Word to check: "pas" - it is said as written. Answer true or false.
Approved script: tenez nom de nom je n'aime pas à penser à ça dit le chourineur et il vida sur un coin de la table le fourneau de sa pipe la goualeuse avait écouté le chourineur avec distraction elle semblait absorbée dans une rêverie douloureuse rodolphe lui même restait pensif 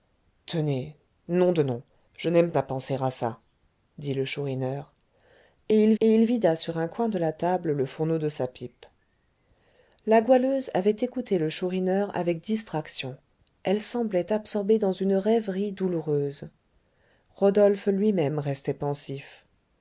false